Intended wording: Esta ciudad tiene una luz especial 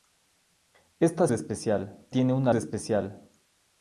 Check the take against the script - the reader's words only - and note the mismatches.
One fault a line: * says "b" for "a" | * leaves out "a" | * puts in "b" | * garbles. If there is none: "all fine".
* says "especial" for "ciudad"
* leaves out "luz"